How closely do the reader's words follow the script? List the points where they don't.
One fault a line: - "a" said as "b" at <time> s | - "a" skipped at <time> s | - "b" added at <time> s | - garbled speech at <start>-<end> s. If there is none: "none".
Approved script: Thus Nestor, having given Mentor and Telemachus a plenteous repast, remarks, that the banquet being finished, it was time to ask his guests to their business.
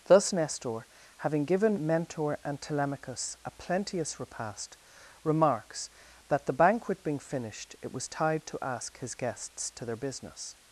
- "time" said as "tide" at 8.1 s